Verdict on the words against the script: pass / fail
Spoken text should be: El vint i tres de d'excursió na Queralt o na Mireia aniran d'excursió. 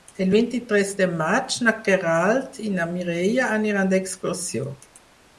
fail